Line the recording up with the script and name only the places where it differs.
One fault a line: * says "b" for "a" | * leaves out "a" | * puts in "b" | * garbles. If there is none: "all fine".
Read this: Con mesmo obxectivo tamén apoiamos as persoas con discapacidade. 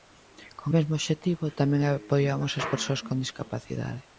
all fine